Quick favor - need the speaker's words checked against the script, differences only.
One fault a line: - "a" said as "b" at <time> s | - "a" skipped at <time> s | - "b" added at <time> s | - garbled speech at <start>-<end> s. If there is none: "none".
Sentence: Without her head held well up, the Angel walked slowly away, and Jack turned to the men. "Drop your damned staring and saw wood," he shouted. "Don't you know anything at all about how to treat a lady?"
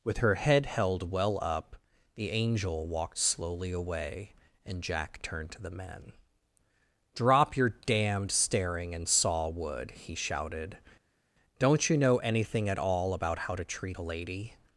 - "Without" said as "With" at 0.0 s